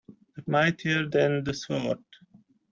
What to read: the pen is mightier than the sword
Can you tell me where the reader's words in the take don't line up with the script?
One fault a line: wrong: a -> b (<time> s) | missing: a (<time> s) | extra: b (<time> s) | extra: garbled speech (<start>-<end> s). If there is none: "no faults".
missing: pen is (0.4 s)